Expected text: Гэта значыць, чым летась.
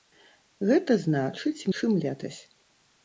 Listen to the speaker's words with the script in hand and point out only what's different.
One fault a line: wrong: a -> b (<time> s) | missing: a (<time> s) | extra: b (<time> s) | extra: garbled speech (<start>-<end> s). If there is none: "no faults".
no faults